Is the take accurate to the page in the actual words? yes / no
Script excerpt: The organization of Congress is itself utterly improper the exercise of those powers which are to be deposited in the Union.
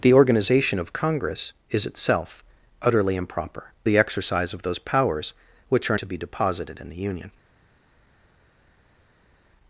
yes